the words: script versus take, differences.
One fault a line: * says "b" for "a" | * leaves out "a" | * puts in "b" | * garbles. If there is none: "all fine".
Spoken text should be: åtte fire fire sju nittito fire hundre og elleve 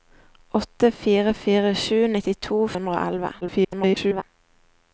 * leaves out "fire"
* garbles